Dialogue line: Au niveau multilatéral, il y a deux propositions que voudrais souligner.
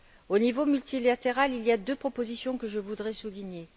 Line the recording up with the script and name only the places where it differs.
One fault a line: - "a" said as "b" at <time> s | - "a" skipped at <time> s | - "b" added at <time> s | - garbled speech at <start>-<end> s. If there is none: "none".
- "je" added at 2.7 s